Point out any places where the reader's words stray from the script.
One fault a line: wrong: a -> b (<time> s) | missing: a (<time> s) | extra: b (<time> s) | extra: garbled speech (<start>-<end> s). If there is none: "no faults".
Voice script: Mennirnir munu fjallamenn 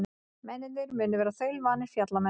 extra: vera þaulvanir (1.2 s)